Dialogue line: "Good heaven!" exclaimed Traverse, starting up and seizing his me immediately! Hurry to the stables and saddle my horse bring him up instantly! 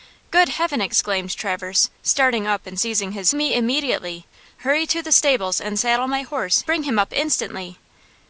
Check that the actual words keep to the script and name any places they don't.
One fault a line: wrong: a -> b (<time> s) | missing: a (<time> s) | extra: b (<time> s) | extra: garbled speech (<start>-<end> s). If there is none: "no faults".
no faults